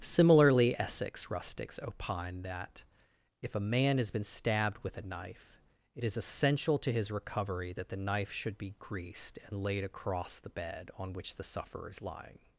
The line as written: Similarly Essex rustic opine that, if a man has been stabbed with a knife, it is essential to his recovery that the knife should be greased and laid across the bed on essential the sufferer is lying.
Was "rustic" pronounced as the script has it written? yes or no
no